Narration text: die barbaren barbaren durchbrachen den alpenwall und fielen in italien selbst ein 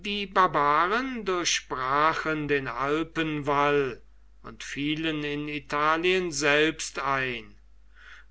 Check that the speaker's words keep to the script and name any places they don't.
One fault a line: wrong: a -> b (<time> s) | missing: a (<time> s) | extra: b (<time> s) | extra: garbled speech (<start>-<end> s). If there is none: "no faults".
missing: barbaren (1.2 s)